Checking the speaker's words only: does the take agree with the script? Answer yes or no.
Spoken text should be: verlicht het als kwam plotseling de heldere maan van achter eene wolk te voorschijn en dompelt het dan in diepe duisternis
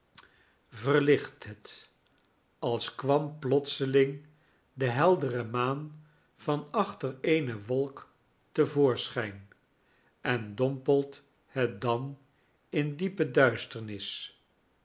yes